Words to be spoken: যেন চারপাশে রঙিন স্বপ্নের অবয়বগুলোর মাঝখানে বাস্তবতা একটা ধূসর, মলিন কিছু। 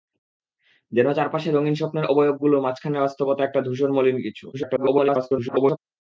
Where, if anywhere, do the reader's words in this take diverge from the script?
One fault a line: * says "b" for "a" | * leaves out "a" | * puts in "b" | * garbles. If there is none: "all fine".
* garbles